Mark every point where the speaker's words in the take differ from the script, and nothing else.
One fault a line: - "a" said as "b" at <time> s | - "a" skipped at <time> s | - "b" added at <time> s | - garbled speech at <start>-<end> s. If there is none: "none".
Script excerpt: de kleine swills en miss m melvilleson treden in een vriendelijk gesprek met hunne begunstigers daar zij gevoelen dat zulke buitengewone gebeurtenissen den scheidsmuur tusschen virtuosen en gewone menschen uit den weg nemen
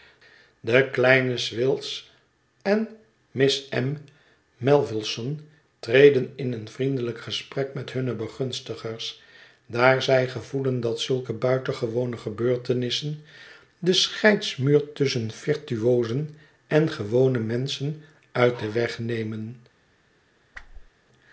none